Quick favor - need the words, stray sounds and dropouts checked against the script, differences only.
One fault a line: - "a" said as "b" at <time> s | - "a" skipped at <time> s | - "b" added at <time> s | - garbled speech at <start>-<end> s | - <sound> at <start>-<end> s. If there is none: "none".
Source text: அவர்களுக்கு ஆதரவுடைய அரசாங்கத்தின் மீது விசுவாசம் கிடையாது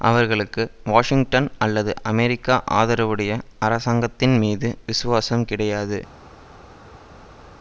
- "வாஷிங்டன் அல்லது அமெரிக்க" added at 0.8 s